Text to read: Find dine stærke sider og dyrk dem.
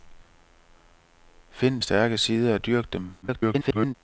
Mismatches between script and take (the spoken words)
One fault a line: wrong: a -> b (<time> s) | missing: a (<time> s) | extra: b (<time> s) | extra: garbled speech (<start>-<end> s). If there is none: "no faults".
missing: dine (1.8 s)
extra: garbled speech (3.2-3.9 s)